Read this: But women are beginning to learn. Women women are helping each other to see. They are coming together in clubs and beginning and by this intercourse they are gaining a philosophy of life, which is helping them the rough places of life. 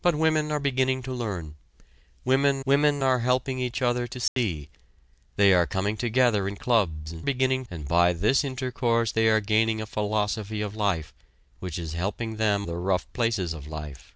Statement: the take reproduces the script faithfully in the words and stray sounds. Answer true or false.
false